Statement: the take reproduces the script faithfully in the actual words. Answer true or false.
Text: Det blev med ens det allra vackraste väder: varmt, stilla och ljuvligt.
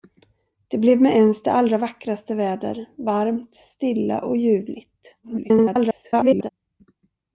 false